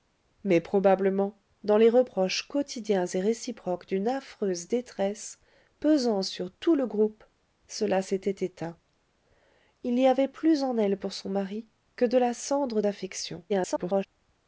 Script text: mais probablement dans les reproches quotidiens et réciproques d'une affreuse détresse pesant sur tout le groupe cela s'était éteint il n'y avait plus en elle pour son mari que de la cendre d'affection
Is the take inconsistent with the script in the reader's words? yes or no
yes